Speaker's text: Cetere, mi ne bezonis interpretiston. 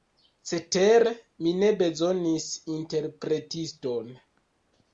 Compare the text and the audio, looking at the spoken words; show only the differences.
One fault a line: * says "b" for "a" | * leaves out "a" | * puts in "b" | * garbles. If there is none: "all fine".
all fine